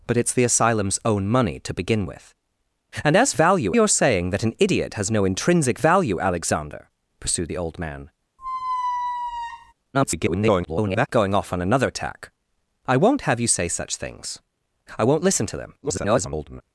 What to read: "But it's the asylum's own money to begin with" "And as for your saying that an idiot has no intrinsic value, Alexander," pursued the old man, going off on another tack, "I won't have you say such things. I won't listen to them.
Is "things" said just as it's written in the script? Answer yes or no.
yes